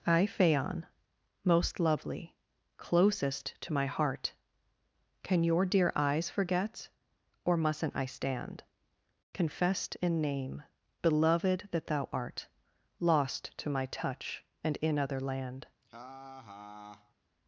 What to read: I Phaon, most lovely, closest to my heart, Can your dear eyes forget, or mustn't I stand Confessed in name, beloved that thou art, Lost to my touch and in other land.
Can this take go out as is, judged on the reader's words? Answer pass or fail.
pass